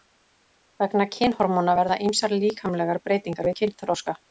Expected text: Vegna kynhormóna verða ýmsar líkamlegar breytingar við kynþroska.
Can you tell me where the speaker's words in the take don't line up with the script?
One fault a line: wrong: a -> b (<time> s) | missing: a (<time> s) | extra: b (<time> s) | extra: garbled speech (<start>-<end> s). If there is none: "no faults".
no faults